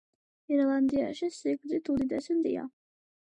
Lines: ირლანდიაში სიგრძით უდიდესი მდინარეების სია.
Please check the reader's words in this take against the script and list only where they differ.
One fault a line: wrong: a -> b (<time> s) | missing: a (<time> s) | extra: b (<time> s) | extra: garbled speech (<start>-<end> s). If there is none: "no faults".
missing: მდინარეების (2.4 s)